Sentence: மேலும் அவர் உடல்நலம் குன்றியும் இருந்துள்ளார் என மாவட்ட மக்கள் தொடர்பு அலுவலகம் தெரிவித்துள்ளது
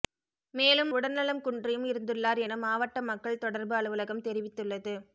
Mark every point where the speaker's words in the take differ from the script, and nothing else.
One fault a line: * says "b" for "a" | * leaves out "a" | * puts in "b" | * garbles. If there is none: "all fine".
* leaves out "அவர்"